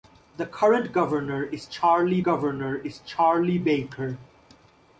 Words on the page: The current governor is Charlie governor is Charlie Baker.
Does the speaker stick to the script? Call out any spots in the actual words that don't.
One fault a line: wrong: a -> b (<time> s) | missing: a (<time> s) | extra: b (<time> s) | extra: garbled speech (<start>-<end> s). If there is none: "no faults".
no faults